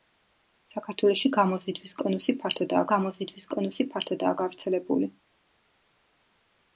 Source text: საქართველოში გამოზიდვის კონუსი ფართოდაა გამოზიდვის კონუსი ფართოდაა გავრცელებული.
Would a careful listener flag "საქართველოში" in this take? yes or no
no